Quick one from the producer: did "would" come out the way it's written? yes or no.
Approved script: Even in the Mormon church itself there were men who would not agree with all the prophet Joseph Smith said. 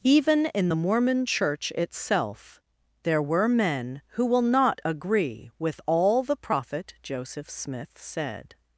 no